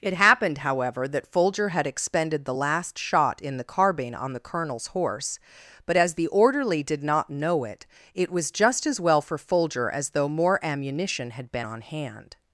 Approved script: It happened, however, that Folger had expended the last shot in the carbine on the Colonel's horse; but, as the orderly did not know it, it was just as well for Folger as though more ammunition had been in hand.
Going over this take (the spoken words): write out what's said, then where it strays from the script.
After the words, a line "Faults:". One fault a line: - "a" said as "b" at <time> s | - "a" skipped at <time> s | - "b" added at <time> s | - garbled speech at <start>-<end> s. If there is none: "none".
It happened, however, that Folger had expended the last shot in the carbine on the Colonel's horse; but, as the orderly did not know it, it was just as well for Folger as though more ammunition had been on hand.
Faults:
- "in" said as "on" at 11.6 s